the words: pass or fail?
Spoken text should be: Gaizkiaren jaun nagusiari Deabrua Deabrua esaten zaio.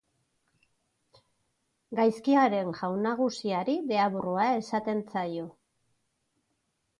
fail